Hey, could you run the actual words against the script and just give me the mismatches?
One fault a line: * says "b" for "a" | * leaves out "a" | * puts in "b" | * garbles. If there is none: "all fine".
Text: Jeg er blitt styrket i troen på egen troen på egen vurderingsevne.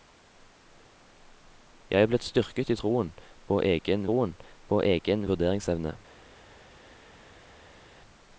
all fine